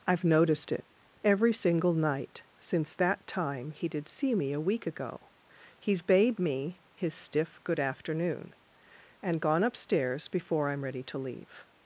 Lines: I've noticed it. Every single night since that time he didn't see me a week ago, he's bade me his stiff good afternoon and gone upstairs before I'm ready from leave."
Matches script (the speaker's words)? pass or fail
fail